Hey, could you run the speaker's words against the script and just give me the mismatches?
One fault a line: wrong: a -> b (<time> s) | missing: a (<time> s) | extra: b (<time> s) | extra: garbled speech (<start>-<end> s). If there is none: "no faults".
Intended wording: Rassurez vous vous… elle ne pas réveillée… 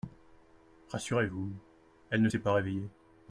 missing: vous (1.5 s)
extra: s'est (2.2 s)